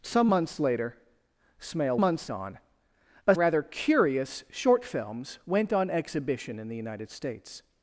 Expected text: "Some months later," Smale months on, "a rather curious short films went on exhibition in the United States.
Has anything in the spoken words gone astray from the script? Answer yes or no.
no